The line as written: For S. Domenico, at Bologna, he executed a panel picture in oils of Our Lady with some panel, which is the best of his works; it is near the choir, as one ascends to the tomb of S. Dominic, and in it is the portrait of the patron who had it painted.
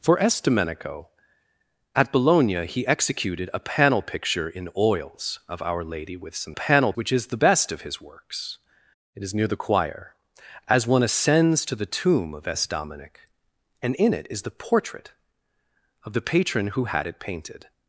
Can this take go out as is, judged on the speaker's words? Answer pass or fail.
pass